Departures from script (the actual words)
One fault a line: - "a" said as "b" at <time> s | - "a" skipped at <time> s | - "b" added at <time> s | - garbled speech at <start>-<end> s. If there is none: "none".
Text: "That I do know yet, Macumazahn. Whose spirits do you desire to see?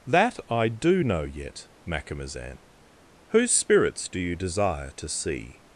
none